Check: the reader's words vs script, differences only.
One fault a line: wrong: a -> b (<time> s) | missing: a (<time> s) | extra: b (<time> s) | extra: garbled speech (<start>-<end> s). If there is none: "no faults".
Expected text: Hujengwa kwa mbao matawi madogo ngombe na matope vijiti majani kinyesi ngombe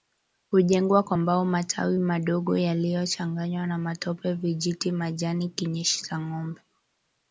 wrong: ngombe -> yaliyochanganywa (2.6 s)
extra: cha (6.0 s)